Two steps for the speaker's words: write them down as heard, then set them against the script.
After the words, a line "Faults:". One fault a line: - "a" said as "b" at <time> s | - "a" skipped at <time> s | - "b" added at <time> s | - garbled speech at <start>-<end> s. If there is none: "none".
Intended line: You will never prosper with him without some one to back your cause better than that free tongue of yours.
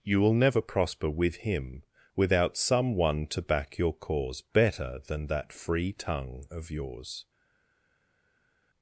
You will never prosper with him without some one to back your cause better than that free tongue of yours.
Faults:
none